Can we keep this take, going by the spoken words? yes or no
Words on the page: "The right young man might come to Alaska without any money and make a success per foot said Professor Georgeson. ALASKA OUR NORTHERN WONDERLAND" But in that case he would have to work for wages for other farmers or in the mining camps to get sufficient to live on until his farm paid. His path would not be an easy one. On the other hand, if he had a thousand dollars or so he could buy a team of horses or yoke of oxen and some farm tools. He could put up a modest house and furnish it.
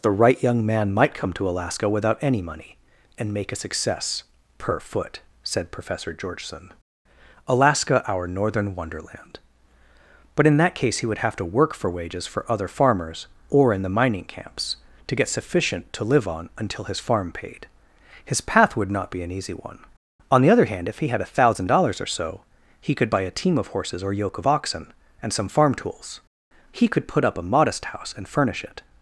yes